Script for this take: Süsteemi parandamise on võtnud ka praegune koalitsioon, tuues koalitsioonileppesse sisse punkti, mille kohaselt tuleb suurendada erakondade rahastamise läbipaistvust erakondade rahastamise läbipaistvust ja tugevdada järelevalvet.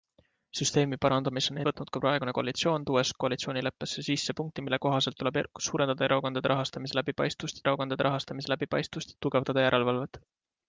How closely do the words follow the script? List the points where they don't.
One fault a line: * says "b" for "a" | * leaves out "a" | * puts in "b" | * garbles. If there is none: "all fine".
all fine